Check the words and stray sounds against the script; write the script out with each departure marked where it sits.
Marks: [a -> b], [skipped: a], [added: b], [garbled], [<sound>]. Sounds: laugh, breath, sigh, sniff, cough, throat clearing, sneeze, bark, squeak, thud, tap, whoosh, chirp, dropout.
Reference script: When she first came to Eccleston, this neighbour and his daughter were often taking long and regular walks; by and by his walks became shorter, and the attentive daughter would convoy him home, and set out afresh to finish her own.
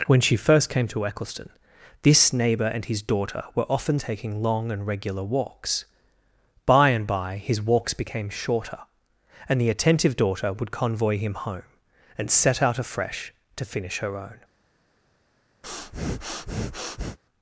When she first came to Eccleston, this neighbour and his daughter were often taking long and regular walks; by and by his walks became shorter, and the attentive daughter would convoy him home, and set out afresh to finish her own. [breath]